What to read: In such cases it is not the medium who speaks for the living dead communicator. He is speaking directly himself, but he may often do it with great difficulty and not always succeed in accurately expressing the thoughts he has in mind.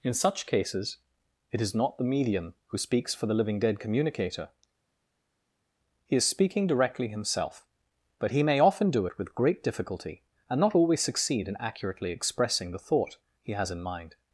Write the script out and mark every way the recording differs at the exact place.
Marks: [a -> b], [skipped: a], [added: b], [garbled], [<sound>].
In such cases it is not the medium who speaks for the living dead communicator. He is speaking directly himself, but he may often do it with great difficulty and not always succeed in accurately expressing the [thoughts -> thought] he has in mind.